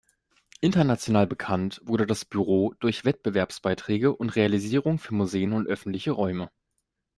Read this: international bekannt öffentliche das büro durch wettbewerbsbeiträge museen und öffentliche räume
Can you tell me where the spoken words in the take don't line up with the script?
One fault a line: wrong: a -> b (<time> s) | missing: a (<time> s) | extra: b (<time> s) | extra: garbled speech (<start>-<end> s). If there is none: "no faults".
wrong: öffentliche -> wurde (1.8 s)
extra: und realisierungen für (4.2 s)